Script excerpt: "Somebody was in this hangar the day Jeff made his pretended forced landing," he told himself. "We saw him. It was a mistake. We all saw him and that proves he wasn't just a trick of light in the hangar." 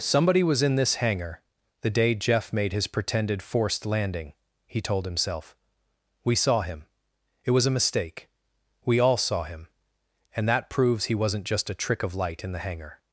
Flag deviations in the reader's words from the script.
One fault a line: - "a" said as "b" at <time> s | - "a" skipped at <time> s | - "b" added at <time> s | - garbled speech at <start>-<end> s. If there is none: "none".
none